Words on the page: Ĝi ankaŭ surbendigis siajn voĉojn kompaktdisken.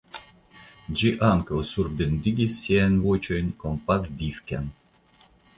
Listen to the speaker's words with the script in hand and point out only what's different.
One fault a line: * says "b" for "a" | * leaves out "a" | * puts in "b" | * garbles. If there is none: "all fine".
all fine